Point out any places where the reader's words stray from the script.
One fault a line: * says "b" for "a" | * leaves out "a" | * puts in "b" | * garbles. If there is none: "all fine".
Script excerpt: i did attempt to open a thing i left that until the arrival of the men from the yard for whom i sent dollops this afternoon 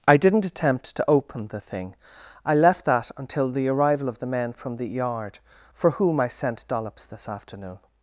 * says "didn't" for "did"
* says "the" for "a"